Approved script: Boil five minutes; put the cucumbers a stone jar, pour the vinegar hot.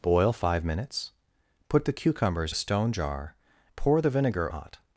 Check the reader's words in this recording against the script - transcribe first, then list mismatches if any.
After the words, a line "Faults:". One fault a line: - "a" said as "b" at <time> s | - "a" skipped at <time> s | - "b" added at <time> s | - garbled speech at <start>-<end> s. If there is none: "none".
Boil five minutes; put the cucumbers a stone jar, pour the vinegar hot.
Faults:
none